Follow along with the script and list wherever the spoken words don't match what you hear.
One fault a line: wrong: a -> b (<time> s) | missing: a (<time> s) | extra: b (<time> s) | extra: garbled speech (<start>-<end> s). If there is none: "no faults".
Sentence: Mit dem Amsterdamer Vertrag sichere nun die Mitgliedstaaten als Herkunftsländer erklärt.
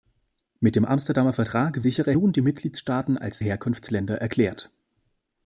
no faults